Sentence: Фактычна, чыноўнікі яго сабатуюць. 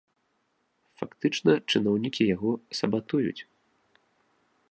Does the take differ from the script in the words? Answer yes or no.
no